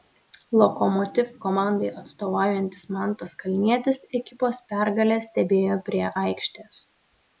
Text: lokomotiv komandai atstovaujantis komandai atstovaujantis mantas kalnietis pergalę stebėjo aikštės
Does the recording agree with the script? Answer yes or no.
no